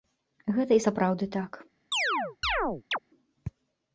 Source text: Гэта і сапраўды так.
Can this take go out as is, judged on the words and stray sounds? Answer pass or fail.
fail